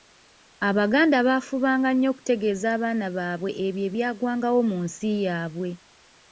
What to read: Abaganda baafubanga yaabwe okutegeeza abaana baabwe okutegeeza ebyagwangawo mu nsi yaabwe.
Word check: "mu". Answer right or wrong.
right